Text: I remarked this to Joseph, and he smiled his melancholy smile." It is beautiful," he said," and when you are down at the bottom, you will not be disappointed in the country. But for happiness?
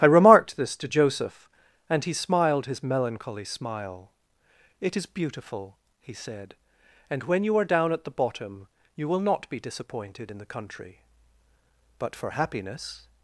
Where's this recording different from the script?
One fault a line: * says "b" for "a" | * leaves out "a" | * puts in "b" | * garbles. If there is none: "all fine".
all fine